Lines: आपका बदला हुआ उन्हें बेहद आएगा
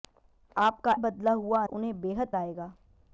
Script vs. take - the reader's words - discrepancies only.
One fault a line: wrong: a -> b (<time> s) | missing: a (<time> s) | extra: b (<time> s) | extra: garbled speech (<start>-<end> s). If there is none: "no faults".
no faults